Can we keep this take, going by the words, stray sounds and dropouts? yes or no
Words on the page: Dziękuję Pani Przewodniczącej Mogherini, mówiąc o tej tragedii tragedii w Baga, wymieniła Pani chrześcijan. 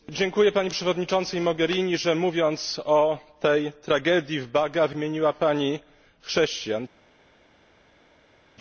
no